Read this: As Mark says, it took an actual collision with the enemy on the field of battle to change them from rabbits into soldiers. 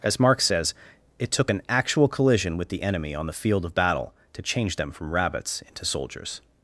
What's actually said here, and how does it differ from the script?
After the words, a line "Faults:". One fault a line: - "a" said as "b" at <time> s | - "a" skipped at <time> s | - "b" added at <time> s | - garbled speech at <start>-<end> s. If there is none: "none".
As Mark says, it took an actual collision with the enemy on the field of battle to change them from rabbits into soldiers.
Faults:
none